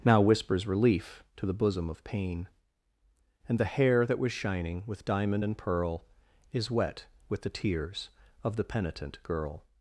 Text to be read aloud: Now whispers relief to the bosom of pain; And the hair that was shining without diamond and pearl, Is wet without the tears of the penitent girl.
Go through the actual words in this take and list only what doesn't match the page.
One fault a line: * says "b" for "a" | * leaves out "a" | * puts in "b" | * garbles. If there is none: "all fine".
* says "with" for "without"
* says "with" for "without"